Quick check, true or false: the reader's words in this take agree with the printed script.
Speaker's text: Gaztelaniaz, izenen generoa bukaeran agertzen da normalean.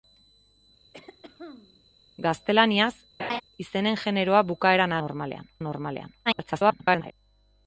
false